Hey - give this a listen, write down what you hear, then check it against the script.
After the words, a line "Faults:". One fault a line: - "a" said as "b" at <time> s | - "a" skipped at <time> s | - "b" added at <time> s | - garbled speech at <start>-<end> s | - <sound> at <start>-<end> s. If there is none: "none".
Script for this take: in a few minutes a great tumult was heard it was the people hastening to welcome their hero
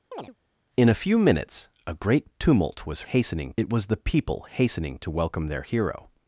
in a few minutes a great tumult was hastening it was the people hastening to welcome their hero
Faults:
- chirp at 0.1-0.4 s
- "heard" said as "hastening" at 3.0 s